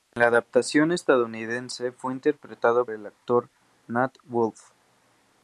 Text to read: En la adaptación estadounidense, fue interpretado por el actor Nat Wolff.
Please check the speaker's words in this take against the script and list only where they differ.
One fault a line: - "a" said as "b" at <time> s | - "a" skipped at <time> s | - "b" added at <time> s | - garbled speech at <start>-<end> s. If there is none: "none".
- "por" skipped at 2.9 s